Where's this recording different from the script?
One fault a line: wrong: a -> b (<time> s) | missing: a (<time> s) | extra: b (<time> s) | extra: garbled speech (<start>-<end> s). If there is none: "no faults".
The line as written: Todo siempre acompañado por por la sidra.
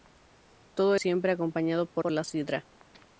no faults